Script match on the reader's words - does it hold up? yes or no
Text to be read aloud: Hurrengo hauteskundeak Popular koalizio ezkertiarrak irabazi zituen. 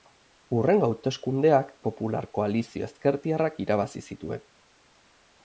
yes